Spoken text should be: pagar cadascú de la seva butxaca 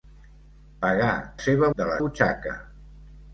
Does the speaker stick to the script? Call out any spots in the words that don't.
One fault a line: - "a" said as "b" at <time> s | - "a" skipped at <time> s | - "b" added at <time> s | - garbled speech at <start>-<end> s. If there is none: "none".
- "cadascú" said as "seva" at 1.5 s
- "seva" skipped at 2.0 s